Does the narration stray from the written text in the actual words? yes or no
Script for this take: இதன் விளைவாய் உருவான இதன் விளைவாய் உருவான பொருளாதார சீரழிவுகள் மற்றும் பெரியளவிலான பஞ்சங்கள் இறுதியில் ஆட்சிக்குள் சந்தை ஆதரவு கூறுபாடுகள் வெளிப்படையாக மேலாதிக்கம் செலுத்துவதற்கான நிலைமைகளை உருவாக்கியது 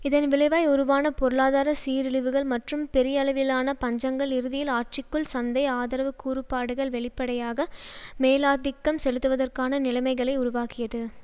yes